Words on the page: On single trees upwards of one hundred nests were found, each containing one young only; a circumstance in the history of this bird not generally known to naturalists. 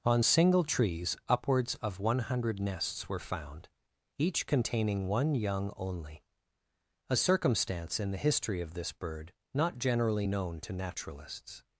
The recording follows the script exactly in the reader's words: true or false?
true